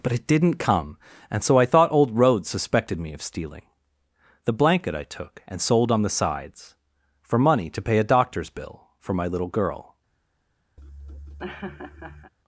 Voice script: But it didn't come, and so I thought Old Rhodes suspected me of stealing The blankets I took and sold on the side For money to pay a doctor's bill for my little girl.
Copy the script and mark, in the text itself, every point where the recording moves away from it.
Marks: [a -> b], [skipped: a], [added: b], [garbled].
But it didn't come, and so I thought Old Rhodes suspected me of stealing The [blankets -> blanket] I took and sold on the [side -> sides] For money to pay a doctor's bill for my little girl.